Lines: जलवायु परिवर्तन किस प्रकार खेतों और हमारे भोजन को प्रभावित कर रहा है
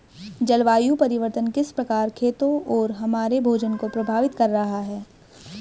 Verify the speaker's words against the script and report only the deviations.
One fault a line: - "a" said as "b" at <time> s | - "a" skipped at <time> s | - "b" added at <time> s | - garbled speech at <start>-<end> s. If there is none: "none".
none